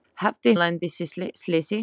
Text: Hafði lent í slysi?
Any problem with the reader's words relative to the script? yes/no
no